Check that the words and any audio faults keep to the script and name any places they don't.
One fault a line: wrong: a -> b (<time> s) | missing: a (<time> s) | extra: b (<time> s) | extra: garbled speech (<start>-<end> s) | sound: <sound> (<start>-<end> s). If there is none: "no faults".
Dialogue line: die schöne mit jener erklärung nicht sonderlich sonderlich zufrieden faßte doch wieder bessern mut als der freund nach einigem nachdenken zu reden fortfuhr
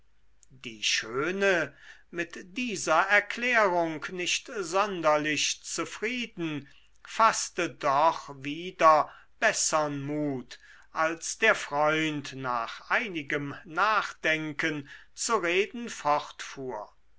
wrong: jener -> dieser (2.6 s)
missing: sonderlich (5.6 s)